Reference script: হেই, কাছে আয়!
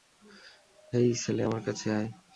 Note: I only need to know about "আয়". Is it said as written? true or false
true